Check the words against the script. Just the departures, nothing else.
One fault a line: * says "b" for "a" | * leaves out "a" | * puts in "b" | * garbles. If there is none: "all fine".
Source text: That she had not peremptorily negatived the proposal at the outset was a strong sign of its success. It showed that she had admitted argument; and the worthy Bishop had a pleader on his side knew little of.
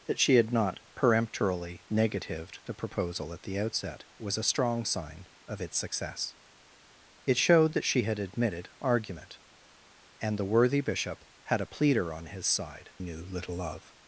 all fine